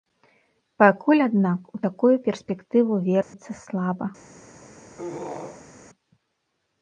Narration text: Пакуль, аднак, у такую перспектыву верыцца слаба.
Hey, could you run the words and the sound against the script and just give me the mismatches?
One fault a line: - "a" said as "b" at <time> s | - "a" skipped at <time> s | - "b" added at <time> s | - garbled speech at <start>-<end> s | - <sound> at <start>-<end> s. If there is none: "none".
- dropout at 3.2-3.3 s
- throat clearing at 5.0-5.7 s